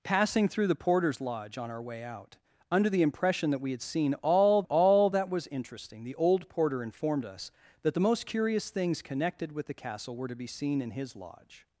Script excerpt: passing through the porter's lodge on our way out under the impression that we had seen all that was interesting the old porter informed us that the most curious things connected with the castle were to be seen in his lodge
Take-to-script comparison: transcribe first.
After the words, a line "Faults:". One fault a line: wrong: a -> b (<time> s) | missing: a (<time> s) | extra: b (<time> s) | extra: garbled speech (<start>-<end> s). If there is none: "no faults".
passing through the porter's lodge on our way out under the impression that we had seen all all that was interesting the old porter informed us that the most curious things connected with the castle were to be seen in his lodge
Faults:
extra: all (4.6 s)